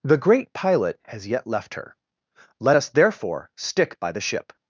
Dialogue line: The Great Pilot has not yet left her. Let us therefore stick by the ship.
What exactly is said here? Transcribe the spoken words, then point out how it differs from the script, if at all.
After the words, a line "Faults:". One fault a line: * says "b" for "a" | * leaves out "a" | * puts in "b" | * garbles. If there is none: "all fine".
The Great Pilot has yet left her. Let us therefore stick by the ship.
Faults:
* leaves out "not"